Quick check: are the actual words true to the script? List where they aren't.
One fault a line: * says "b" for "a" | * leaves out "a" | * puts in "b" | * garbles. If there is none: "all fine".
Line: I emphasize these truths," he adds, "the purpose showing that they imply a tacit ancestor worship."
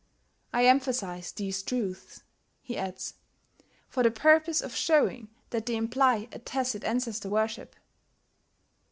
* puts in "for"
* puts in "of"